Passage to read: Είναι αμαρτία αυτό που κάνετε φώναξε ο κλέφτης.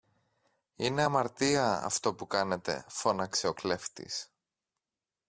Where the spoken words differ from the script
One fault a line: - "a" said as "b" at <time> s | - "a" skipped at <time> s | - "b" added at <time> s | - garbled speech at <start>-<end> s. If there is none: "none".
none